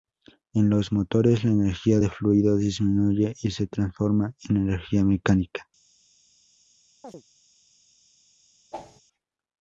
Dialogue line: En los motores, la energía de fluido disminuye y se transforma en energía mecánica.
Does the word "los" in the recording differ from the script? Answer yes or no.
no